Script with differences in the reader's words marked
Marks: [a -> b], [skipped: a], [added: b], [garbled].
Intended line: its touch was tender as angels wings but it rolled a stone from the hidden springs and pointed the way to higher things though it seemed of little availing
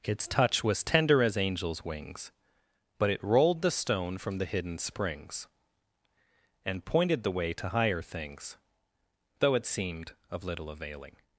its touch was tender as angels wings but it rolled [a -> the] stone from the hidden springs and pointed the way to higher things though it seemed of little availing